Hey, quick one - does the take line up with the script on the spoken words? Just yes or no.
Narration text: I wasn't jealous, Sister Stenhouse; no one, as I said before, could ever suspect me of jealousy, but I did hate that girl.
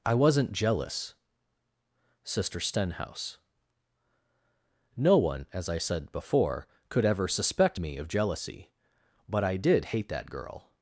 yes